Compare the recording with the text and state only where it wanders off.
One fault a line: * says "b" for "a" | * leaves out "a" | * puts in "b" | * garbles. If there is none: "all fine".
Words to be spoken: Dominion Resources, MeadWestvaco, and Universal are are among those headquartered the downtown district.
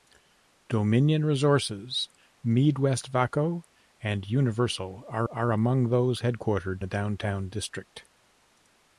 all fine